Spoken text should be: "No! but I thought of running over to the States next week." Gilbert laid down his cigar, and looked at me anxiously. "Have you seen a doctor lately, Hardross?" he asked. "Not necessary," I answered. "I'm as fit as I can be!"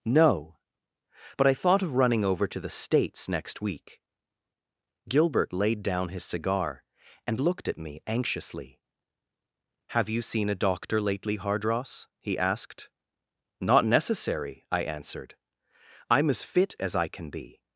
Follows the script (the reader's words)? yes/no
yes